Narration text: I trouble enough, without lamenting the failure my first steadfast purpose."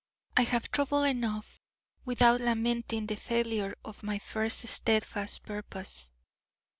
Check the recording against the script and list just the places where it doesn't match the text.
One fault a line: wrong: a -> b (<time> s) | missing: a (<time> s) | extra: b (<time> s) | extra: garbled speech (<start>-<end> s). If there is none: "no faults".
extra: have (0.5 s)
extra: of (3.8 s)